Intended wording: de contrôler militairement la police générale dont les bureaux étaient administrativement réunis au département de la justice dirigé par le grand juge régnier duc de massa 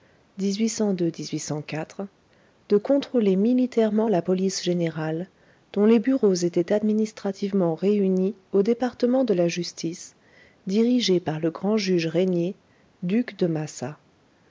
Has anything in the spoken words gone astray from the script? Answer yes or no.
no